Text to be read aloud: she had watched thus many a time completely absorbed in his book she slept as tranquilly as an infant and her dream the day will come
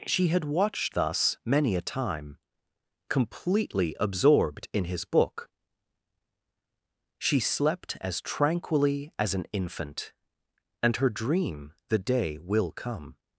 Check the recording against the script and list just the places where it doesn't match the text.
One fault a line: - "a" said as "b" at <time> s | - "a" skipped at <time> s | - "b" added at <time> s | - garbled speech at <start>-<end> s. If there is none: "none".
none